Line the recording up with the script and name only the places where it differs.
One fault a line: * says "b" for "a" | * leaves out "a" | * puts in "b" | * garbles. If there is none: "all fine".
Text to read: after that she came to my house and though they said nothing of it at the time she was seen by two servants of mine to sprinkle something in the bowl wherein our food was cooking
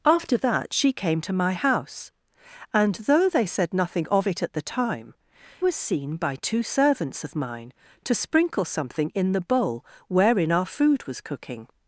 * leaves out "she"